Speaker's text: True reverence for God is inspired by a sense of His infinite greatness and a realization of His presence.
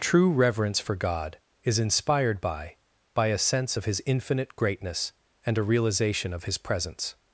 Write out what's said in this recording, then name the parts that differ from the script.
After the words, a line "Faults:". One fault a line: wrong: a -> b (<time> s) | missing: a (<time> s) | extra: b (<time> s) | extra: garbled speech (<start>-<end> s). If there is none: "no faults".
True reverence for God is inspired by by a sense of His infinite greatness and a realization of His presence.
Faults:
extra: by (3.1 s)